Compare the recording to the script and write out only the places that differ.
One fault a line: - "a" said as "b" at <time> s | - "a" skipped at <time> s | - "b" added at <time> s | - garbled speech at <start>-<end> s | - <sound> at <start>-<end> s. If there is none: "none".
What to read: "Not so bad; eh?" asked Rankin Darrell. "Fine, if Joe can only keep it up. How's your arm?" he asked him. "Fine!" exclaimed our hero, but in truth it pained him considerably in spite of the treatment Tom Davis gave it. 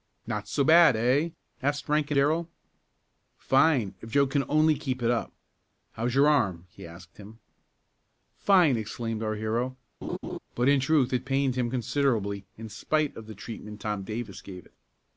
- laugh at 10.0-10.4 s